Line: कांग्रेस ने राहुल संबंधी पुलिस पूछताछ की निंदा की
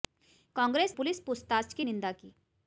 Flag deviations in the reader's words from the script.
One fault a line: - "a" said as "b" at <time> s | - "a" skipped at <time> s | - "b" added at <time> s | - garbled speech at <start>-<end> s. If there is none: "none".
- "ने राहुल संबंधी" skipped at 0.9 s